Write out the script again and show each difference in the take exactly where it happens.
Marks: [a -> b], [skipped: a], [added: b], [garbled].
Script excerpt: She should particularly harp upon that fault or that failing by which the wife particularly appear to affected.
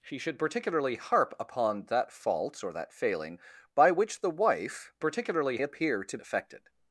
She should particularly harp upon that fault or that failing by which the wife particularly appear to affected.